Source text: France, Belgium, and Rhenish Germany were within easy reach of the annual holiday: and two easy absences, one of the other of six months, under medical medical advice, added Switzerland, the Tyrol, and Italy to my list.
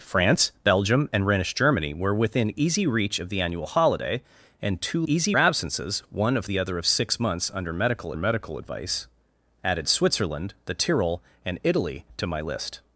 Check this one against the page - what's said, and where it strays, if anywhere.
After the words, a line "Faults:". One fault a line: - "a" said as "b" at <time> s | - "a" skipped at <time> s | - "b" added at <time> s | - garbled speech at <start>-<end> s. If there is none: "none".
France, Belgium, and Rhenish Germany were within easy reach of the annual holiday: and two easy absences, one of the other of six months, under medical medical advice, added Switzerland, the Tyrol, and Italy to my list.
Faults:
none